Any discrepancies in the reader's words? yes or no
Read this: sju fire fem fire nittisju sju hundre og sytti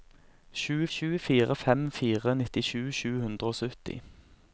yes